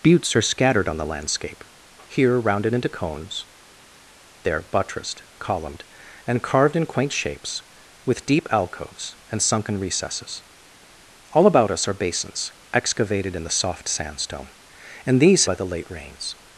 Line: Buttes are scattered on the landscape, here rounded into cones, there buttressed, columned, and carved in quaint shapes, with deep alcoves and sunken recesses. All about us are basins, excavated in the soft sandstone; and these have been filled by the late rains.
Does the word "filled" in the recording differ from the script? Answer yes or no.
yes